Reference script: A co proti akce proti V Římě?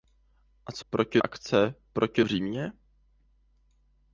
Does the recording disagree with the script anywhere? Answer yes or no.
no